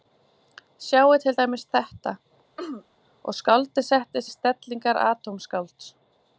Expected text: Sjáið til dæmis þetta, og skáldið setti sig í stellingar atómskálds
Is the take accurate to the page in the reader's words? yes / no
no